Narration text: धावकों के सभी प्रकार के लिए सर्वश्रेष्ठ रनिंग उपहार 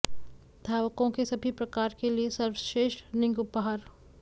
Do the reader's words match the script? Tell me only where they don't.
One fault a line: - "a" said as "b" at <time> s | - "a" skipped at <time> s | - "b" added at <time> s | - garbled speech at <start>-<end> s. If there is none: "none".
none